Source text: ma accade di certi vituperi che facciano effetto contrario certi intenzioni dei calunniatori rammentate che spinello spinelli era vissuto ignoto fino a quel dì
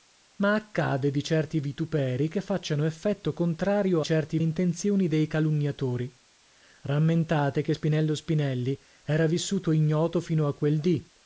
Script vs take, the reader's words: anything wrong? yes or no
no